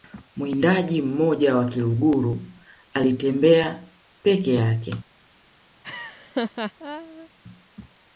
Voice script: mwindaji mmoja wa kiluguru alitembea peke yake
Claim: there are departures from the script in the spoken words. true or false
false